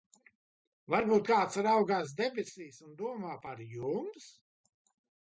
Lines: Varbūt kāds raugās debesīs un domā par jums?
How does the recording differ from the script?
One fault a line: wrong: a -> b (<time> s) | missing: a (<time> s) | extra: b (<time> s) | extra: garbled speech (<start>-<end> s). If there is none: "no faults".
no faults